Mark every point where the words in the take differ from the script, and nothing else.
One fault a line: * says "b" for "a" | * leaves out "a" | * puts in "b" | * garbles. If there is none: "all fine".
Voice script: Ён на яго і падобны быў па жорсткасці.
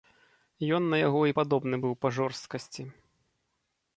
all fine